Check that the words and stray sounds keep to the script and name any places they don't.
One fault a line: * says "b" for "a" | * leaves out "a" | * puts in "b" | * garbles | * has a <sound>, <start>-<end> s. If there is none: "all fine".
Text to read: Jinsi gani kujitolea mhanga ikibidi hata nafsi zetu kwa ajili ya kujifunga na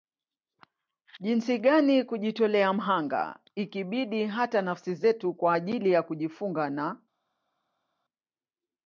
all fine